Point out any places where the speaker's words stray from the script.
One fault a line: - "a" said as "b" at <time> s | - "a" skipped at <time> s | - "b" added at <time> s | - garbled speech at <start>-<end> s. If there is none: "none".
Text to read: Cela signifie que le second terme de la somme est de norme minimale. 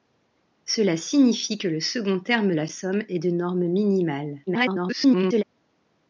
- "de" skipped at 2.5 s
- garbled speech at 4.5-5.4 s